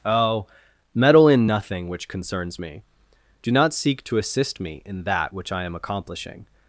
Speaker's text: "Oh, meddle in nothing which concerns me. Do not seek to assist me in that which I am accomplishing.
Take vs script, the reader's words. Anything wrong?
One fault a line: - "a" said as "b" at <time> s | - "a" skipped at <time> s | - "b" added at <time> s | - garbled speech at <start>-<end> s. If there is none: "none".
none